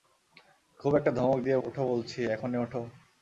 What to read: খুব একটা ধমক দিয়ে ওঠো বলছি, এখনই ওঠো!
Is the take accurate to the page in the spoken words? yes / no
yes